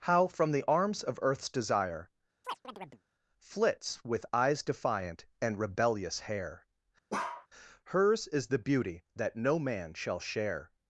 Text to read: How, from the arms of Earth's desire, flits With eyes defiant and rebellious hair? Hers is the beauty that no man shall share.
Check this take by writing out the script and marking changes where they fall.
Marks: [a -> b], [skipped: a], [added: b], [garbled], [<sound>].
How, from the arms of Earth's desire, [chirp] flits With eyes defiant and rebellious hair? [bark] Hers is the beauty that no man shall share.